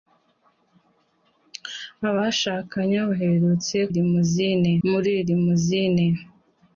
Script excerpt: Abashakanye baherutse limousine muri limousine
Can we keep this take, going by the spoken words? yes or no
yes